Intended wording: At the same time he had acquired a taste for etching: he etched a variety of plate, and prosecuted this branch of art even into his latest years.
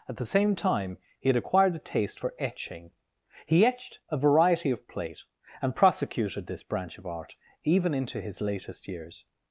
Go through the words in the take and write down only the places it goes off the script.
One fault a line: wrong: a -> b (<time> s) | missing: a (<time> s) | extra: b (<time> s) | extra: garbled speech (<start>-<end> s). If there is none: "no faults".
no faults